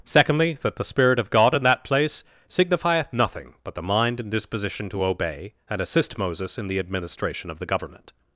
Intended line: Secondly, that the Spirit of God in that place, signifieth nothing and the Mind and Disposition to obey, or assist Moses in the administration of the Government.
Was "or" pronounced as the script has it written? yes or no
no